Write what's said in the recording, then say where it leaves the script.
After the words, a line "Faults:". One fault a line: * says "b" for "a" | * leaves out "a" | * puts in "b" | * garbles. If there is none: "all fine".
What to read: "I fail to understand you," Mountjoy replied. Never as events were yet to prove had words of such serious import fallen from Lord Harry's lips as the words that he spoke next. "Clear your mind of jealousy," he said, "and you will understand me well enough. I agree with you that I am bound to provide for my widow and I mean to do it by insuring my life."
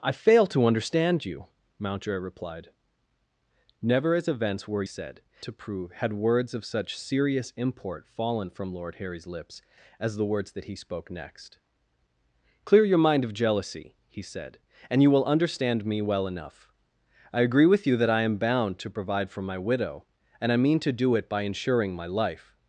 "I fail to understand you," Mountjoy replied. Never as events were said to prove had words of such serious import fallen from Lord Harry's lips as the words that he spoke next. "Clear your mind of jealousy," he said, "and you will understand me well enough. I agree with you that I am bound to provide for my widow and I mean to do it by insuring my life."
Faults:
* says "said" for "yet"